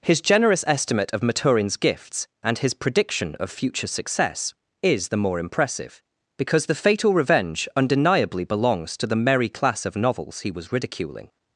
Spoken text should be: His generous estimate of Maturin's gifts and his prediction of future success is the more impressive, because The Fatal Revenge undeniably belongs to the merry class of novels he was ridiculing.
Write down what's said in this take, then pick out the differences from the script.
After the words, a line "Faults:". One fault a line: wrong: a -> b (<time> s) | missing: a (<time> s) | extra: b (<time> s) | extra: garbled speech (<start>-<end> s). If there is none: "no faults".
His generous estimate of Maturin's gifts and his prediction of future success is the more impressive, because The Fatal Revenge undeniably belongs to the merry class of novels he was ridiculing.
Faults:
no faults